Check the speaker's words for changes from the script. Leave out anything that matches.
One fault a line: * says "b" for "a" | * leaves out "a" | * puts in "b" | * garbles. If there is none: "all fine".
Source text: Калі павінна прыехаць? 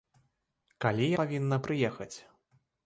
all fine